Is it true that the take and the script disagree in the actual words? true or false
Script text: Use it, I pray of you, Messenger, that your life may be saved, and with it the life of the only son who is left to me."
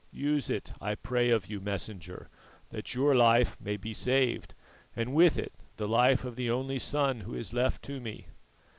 false